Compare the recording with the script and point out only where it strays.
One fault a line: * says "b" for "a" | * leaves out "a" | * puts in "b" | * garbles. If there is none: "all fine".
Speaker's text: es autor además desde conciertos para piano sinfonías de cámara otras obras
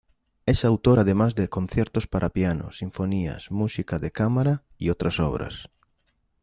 * says "de" for "desde"
* puts in "música"
* puts in "y"